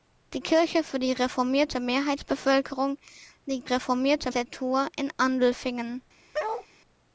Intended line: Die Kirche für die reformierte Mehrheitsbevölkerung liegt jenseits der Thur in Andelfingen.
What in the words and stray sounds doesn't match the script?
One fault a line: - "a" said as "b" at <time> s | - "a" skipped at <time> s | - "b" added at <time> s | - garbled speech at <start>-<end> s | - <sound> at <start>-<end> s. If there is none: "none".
- "jenseits" said as "reformierte" at 3.6 s
- bark at 6.3-6.7 s